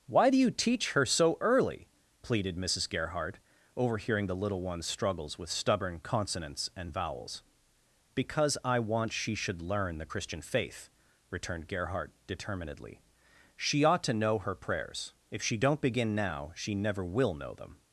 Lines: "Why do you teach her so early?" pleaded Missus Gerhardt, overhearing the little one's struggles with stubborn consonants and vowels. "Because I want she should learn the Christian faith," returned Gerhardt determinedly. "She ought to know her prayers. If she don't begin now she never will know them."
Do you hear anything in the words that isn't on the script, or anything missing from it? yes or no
no